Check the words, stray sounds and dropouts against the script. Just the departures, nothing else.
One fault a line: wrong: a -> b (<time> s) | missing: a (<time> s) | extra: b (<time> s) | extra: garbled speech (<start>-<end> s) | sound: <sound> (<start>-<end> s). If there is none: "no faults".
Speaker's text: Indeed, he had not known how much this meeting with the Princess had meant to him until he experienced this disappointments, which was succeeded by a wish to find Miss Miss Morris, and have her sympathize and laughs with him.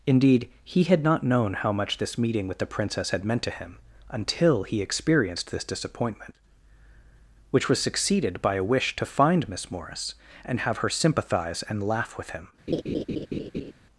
wrong: disappointments -> disappointment (5.6 s)
missing: Miss (9.7 s)
wrong: laughs -> laugh (11.9 s)
sound: laugh (12.7-13.7 s)